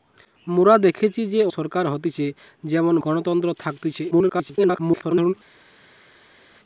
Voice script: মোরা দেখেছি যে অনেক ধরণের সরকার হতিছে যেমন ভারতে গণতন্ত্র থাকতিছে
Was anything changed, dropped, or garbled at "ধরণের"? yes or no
yes